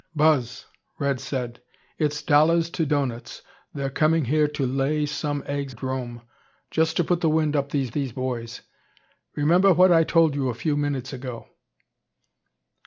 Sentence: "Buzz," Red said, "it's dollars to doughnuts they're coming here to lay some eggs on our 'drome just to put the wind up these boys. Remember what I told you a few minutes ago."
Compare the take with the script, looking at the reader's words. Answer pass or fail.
fail